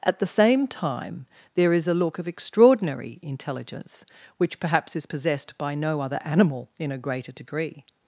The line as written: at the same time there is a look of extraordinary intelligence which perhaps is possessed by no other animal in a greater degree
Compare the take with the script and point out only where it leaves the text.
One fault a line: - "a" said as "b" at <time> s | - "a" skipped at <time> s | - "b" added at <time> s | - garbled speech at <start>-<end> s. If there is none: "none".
none